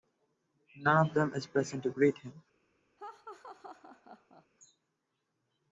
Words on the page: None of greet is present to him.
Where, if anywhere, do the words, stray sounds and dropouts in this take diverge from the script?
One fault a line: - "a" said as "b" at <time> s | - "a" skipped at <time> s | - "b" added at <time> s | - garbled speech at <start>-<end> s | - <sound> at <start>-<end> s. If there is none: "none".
- "greet" said as "them" at 1.1 s
- "greet" added at 1.9 s
- laugh at 3.0-4.5 s